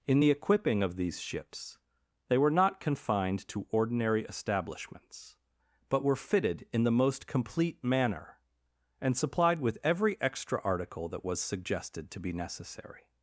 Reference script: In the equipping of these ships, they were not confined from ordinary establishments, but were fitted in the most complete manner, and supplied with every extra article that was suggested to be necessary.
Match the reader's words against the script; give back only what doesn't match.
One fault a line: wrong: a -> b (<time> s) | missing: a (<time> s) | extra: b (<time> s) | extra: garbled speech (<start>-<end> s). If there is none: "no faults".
wrong: from -> to (3.5 s)